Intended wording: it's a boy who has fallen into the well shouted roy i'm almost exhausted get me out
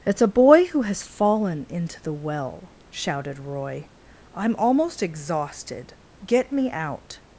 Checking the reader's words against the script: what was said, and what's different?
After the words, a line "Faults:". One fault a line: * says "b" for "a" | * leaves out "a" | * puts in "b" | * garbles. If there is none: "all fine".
it's a boy who has fallen into the well shouted roy i'm almost exhausted get me out
Faults:
all fine